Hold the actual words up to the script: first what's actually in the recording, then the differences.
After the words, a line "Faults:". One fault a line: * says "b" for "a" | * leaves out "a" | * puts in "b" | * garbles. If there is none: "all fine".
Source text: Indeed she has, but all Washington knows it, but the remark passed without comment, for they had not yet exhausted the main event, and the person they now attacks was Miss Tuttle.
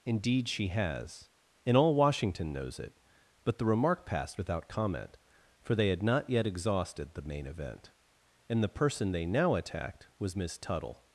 Indeed she has, and all Washington knows it, but the remark passed without comment, for they had not yet exhausted the main event, and the person they now attacked was Miss Tuttle.
Faults:
* says "and" for "but"
* says "attacked" for "attacks"